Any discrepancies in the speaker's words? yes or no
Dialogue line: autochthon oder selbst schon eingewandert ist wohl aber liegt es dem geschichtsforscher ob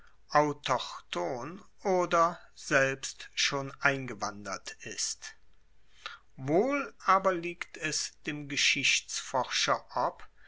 no